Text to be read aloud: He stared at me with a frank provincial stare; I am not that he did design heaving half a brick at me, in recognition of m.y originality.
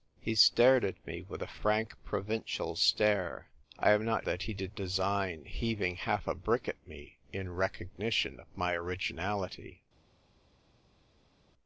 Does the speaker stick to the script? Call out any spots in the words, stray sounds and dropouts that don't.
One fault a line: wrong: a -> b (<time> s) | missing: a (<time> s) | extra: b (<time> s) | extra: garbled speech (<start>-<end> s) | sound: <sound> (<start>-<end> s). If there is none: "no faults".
no faults